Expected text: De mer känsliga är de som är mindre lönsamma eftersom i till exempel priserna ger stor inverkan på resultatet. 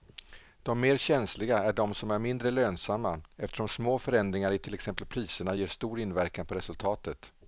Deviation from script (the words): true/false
true